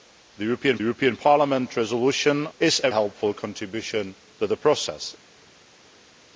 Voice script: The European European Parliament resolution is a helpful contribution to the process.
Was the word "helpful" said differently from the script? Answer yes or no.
no